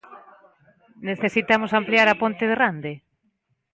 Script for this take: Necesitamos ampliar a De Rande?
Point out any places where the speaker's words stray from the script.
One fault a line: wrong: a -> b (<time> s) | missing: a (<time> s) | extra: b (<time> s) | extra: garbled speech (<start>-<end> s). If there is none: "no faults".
extra: Ponte (2.2 s)